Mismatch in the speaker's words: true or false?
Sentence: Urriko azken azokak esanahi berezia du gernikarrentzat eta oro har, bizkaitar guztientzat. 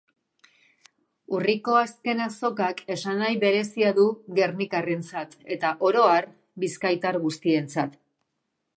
false